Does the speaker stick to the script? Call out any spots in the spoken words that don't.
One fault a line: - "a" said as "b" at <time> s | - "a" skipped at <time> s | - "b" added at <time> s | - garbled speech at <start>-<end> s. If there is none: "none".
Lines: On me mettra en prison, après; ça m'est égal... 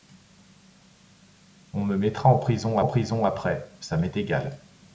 - "en prison" added at 2.8 s